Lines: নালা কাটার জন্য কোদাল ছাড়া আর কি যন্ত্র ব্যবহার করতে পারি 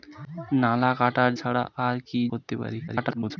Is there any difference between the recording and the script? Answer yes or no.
yes